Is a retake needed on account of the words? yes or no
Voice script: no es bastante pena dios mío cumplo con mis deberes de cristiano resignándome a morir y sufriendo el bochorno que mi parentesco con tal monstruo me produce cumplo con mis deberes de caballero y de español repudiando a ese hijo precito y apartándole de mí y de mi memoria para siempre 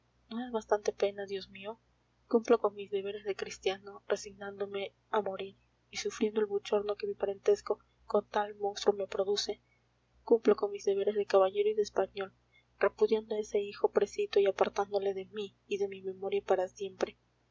no